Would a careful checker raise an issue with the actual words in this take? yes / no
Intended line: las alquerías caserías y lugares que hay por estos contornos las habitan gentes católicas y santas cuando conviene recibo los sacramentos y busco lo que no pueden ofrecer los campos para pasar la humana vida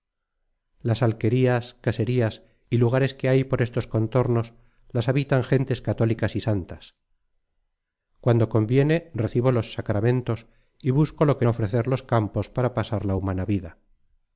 yes